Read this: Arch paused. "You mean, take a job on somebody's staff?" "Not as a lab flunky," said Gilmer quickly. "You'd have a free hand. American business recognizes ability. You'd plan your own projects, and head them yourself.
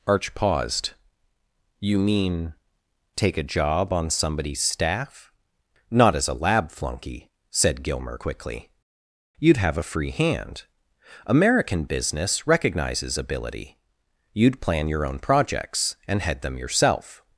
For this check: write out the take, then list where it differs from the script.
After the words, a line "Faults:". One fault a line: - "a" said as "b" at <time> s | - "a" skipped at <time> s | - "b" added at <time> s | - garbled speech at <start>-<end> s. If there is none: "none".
Arch paused. "You mean, take a job on somebody's staff?" "Not as a lab flunky," said Gilmer quickly. "You'd have a free hand. American business recognizes ability. You'd plan your own projects, and head them yourself.
Faults:
none